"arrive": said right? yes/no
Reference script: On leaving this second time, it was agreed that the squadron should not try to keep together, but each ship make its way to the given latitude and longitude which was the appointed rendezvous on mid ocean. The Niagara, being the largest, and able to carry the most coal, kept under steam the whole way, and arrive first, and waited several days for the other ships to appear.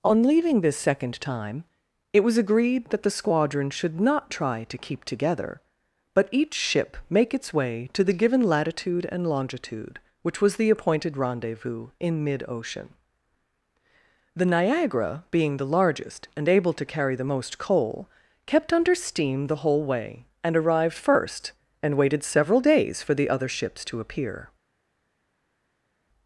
no